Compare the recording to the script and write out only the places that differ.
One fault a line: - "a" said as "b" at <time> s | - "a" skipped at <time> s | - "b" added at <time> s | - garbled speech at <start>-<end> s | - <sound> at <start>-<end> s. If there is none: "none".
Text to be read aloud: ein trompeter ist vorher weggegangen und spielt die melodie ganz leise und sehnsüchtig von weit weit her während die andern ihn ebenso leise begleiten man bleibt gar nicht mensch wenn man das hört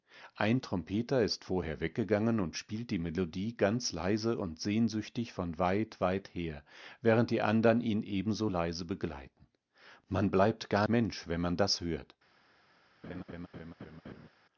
- "nicht" skipped at 10.9 s
- laugh at 13.0-14.3 s